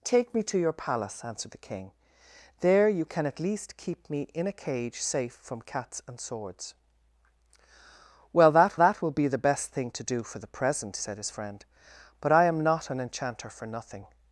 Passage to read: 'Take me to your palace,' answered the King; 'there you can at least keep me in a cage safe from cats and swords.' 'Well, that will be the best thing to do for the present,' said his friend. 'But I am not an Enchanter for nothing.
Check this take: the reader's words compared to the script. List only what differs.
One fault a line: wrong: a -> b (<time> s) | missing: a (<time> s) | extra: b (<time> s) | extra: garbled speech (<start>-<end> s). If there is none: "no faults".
extra: that (8.8 s)